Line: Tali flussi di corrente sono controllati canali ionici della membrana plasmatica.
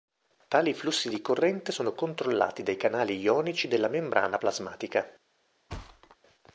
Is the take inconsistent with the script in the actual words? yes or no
yes